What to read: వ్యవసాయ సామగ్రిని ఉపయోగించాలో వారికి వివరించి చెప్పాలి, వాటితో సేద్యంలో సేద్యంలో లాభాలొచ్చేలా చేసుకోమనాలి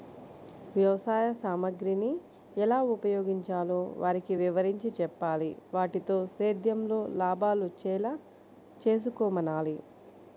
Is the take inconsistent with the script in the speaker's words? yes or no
yes